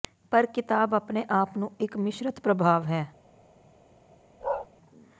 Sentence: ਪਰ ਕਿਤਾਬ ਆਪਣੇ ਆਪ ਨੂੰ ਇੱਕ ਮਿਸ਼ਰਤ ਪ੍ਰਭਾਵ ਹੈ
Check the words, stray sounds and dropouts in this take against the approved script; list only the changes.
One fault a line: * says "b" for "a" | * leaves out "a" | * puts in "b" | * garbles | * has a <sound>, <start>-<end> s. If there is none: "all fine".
* has a bark, 4.4-4.7 s